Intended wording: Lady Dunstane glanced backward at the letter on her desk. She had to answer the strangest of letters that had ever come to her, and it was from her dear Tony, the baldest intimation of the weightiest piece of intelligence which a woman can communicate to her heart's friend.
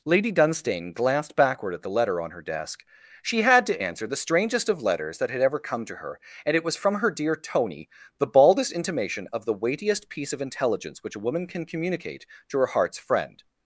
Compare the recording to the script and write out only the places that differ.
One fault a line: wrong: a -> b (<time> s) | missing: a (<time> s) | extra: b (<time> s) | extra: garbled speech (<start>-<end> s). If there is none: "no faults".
no faults